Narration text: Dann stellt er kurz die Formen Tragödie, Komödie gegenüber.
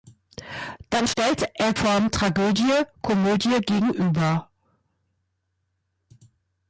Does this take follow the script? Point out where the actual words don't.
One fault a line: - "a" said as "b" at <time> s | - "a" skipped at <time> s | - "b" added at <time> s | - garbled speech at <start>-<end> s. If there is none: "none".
- "kurz die" skipped at 1.7 s